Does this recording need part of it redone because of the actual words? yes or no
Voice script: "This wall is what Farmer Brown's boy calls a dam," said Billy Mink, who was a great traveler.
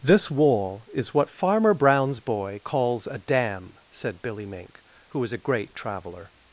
no